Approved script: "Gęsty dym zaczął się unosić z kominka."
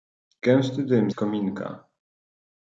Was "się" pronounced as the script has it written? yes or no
no